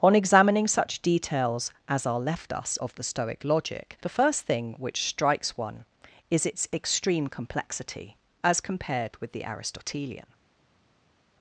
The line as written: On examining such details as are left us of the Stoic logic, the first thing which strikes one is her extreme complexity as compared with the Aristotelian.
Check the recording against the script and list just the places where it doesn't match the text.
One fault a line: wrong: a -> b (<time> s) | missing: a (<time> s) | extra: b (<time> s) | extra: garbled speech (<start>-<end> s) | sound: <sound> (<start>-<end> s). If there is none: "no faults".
wrong: her -> its (6.4 s)